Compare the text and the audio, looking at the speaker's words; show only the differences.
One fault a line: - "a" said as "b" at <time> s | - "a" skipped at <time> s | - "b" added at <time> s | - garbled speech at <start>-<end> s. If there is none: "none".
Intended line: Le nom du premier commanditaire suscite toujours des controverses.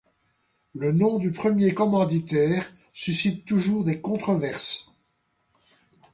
none